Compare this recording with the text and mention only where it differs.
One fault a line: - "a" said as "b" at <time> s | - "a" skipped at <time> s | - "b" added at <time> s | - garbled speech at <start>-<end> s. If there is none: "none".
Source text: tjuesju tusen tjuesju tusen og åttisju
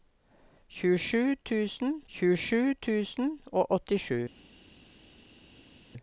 none